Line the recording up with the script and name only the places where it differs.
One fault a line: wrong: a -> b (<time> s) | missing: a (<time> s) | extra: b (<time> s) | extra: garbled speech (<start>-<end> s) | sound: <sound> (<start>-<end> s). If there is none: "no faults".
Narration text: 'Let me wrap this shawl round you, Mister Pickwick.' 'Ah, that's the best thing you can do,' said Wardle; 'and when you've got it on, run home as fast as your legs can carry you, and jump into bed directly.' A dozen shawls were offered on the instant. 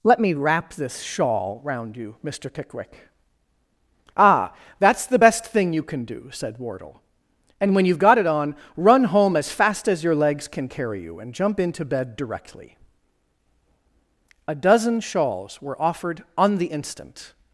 no faults